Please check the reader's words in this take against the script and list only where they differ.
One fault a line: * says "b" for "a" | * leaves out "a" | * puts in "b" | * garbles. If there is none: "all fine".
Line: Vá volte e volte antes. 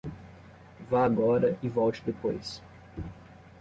* says "agora" for "volte"
* says "depois" for "antes"